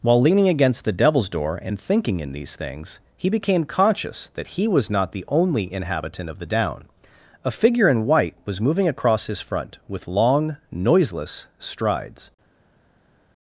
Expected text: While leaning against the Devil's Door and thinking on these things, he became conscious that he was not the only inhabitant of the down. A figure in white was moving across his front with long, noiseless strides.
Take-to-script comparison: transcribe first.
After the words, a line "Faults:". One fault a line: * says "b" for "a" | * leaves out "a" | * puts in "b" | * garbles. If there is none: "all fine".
While leaning against the Devil's Door and thinking in these things, he became conscious that he was not the only inhabitant of the down. A figure in white was moving across his front with long, noiseless strides.
Faults:
* says "in" for "on"